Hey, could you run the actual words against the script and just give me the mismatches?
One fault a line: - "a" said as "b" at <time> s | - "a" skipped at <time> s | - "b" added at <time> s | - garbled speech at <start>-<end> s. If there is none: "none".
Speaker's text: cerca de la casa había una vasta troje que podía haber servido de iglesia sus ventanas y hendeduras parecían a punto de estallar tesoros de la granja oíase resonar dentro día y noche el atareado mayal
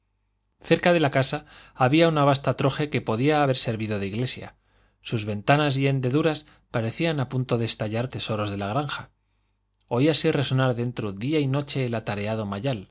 none